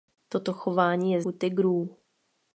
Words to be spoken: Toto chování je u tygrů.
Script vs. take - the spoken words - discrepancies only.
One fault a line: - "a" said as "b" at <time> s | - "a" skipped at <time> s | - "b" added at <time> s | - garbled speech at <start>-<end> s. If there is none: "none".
none